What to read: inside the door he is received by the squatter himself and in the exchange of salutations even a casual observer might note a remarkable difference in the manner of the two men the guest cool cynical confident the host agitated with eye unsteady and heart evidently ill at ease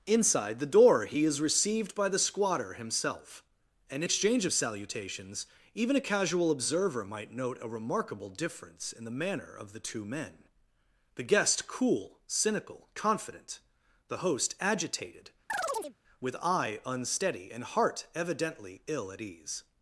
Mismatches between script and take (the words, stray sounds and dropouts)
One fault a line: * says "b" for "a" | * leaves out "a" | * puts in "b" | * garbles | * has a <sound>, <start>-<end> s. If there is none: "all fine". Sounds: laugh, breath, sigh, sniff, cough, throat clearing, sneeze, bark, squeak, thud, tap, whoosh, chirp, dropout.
* leaves out "the"
* has a chirp, 15.5-16.0 s